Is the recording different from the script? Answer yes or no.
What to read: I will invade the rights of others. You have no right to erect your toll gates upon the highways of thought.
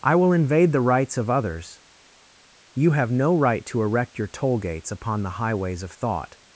no